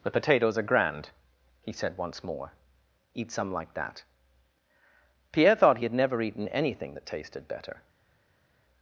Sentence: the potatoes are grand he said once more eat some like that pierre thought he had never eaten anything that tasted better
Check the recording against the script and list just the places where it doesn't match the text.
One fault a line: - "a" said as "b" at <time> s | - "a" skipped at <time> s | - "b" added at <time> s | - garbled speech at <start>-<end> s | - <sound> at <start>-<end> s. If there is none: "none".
none